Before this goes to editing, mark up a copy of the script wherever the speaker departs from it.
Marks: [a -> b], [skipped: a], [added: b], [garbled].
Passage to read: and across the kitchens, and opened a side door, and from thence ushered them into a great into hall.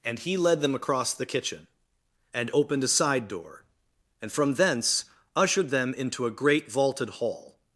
and [added: he led them] across the [kitchens, -> kitchen] and opened a side door, and from thence ushered them into a great [into -> vaulted] hall.